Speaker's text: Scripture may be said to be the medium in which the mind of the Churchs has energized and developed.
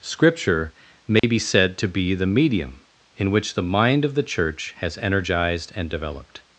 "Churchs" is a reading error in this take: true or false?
true